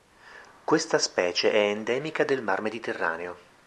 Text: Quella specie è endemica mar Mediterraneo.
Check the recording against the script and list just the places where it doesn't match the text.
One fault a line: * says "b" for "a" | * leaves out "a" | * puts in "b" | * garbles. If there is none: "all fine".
* says "Questa" for "Quella"
* puts in "del"